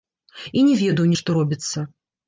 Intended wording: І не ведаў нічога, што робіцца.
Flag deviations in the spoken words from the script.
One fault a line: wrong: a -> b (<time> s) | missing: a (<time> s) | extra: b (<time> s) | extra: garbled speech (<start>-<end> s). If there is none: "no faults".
missing: нічога (1.1 s)